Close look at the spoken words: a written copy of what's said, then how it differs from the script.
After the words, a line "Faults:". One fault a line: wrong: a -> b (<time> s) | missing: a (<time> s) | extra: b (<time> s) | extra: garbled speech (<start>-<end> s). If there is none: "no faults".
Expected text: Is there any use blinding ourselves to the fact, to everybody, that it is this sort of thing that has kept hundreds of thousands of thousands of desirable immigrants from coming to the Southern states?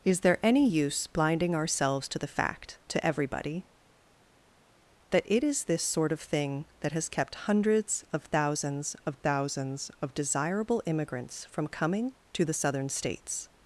Is there any use blinding ourselves to the fact, to everybody, that it is this sort of thing that has kept hundreds of thousands of thousands of desirable immigrants from coming to the Southern states?
Faults:
no faults